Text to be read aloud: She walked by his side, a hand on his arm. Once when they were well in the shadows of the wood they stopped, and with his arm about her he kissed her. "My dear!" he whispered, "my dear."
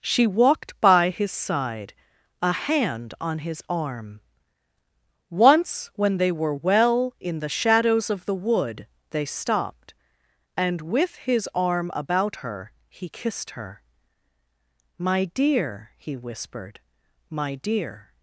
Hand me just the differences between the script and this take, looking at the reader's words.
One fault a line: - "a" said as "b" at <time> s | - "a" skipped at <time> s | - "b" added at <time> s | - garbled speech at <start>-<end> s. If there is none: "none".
none